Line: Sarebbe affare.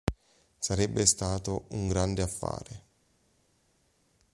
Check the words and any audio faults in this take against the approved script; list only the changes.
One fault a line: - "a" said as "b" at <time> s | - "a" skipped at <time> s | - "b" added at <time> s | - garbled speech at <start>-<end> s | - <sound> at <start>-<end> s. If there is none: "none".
- "stato un grande" added at 1.1 s